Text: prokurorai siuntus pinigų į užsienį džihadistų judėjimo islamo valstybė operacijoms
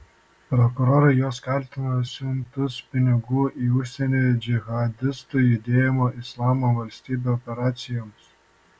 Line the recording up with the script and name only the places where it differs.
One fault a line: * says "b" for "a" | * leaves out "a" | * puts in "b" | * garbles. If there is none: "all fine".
* puts in "juos kaltina"